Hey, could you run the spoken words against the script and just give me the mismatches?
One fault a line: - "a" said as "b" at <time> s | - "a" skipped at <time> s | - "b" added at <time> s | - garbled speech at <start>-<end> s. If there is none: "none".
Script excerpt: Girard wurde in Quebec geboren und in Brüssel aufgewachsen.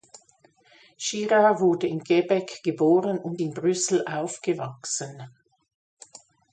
none